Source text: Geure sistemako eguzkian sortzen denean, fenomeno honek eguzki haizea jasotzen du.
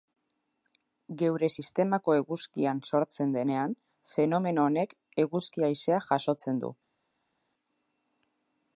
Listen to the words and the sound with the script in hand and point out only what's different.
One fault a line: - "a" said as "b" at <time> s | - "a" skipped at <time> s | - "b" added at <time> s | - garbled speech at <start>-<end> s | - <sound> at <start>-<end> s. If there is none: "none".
none